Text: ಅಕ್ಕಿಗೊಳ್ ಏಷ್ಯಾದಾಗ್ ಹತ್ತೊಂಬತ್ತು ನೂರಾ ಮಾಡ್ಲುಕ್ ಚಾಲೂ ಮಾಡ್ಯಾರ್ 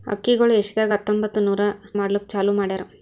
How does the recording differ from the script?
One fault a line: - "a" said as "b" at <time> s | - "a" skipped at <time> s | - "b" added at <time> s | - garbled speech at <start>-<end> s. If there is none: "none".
none